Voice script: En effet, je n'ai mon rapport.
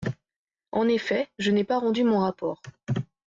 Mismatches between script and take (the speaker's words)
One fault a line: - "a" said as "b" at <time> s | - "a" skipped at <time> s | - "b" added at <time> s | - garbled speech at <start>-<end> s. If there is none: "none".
- "pas rendu" added at 1.6 s